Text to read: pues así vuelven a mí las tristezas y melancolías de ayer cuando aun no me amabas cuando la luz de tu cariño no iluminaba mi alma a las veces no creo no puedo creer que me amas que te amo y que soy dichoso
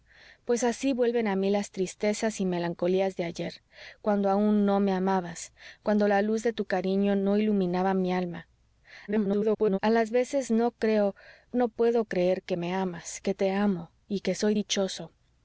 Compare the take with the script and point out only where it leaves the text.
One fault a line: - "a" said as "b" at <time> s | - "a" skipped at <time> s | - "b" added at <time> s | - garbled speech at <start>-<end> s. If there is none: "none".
- garbled speech at 9.1-9.8 s